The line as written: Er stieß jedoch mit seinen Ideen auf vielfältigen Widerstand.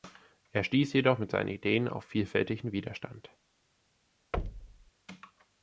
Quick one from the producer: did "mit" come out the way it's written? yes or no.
yes